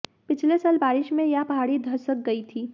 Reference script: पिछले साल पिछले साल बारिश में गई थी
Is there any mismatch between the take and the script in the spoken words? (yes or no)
yes